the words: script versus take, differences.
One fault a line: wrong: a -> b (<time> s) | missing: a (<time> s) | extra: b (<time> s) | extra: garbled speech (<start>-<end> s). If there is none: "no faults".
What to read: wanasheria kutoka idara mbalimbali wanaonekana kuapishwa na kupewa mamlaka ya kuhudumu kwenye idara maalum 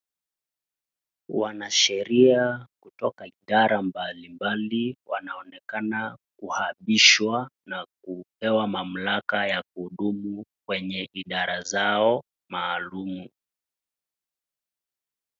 extra: zao (11.6 s)